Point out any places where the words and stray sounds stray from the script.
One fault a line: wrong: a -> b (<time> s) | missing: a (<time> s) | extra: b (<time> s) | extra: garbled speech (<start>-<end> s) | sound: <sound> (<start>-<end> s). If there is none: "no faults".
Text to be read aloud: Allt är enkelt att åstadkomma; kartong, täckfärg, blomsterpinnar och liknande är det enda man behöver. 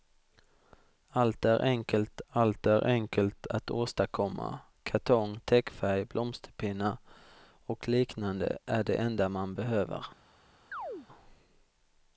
extra: allt är enkelt (2.3 s)
sound: chirp (10.7-11.1 s)